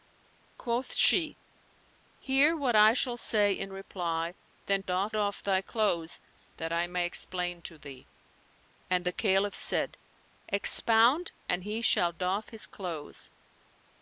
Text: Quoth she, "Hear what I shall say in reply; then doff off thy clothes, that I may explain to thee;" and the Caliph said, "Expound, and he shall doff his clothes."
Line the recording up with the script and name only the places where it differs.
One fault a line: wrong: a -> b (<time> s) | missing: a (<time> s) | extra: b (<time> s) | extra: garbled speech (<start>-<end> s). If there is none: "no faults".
no faults